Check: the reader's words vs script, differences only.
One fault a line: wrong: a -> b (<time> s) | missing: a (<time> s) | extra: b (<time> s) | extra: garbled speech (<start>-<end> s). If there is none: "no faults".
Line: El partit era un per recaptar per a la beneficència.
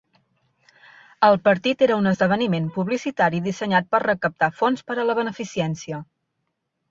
extra: esdeveniment publicitari dissenyat (2.1 s)
extra: fons (4.6 s)